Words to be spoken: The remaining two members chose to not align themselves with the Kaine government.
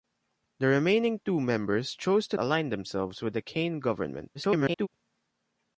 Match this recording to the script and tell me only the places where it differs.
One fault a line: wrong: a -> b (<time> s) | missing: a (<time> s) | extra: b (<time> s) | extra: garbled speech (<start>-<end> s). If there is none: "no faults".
missing: not (2.4 s)
extra: garbled speech (4.3-4.9 s)